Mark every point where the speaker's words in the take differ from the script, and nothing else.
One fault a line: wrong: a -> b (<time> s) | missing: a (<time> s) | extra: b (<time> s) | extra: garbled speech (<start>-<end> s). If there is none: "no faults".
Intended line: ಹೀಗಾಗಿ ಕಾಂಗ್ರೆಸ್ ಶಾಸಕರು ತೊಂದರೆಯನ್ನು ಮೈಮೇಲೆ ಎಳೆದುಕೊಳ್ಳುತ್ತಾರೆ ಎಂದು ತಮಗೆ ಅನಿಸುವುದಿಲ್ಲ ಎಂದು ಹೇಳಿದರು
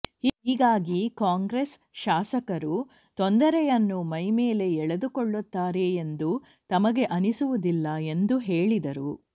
no faults